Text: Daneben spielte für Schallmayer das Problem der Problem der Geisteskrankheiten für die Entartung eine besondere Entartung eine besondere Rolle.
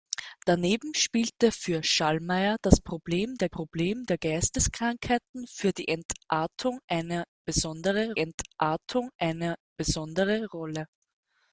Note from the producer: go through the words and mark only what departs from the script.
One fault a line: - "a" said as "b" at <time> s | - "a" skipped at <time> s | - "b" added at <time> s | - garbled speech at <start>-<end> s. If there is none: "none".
none